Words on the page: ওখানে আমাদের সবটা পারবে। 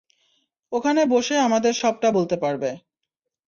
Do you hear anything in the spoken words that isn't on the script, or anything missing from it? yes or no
yes